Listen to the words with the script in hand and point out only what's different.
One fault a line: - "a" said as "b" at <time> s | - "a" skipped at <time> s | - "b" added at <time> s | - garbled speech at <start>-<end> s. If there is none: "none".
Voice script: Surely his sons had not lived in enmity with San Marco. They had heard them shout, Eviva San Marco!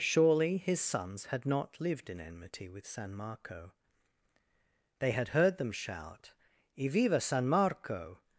none